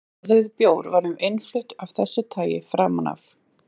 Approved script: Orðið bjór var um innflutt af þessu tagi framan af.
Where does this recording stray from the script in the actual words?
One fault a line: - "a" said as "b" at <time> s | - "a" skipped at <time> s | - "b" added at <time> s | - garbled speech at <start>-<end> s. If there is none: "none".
none